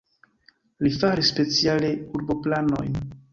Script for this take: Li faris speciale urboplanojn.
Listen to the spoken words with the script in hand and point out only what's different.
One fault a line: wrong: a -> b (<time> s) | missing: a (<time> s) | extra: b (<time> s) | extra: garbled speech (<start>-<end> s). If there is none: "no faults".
no faults